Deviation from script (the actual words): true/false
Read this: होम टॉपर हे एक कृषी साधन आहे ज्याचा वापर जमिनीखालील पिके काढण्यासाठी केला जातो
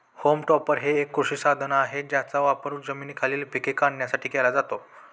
false